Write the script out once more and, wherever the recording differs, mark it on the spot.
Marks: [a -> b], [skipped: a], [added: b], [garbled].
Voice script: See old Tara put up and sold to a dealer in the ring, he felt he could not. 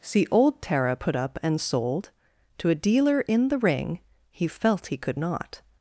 See old Tara put up and sold to a dealer in the ring, he felt he could not.